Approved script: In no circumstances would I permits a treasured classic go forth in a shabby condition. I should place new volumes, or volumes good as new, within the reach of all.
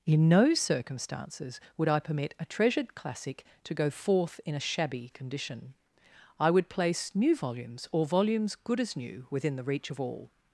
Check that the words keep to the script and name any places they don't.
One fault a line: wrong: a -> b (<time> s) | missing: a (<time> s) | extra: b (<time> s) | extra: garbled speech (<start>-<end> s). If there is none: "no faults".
wrong: permits -> permit (2.0 s)
extra: to (3.6 s)
wrong: should -> would (6.5 s)